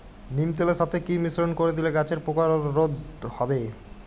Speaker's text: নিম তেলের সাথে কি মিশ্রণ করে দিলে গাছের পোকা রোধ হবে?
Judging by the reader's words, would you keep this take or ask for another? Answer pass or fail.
pass